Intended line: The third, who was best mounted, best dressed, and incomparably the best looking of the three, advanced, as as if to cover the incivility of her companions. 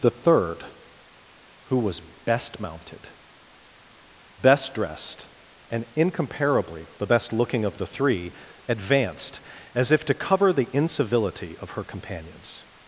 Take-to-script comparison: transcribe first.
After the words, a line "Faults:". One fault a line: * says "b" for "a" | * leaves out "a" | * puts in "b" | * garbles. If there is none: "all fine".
The third, who was best mounted, best dressed, and incomparably the best looking of the three, advanced, as if to cover the incivility of her companions.
Faults:
* leaves out "as"